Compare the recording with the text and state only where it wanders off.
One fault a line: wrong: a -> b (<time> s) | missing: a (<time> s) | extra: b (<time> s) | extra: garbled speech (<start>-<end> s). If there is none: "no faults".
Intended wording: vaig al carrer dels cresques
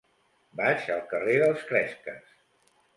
no faults